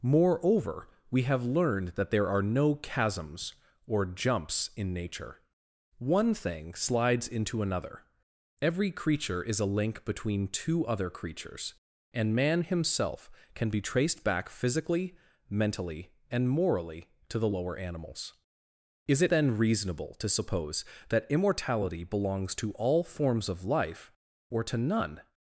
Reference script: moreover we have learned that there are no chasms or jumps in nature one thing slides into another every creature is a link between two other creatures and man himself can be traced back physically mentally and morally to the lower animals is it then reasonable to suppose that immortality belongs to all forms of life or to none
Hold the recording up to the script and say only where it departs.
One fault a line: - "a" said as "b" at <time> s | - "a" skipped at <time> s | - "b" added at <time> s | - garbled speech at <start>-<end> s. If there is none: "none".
none